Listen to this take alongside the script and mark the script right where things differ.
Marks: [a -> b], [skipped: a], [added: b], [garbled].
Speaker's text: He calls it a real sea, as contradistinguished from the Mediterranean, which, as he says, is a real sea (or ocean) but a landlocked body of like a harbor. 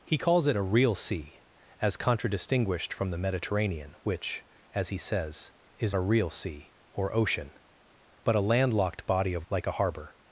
He calls it a real sea, as contradistinguished from the Mediterranean, which, as he says, is a real sea (or ocean) but a landlocked body of like a harbor.